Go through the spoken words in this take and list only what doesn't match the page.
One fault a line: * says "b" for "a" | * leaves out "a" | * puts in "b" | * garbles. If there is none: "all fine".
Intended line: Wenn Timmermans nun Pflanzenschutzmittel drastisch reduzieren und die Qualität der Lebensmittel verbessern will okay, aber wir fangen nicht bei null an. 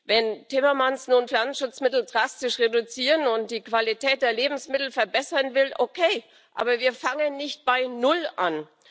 all fine